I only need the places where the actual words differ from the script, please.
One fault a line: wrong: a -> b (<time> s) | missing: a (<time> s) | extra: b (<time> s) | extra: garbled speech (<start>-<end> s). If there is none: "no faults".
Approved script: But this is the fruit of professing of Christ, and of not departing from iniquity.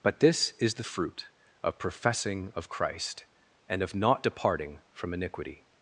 no faults